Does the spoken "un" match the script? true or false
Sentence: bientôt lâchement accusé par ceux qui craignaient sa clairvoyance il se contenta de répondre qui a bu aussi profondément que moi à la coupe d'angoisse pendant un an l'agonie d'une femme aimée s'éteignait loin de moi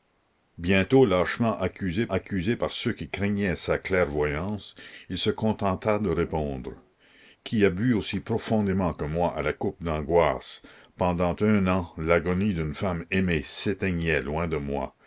true